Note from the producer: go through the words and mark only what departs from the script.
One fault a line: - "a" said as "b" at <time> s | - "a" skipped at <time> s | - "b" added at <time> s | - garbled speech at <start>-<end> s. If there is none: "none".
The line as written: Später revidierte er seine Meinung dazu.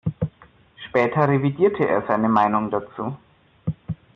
none